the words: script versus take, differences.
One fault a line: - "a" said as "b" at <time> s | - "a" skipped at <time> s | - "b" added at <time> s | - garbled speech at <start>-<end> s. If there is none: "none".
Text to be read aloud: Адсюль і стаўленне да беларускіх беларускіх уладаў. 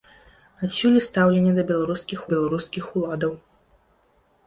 none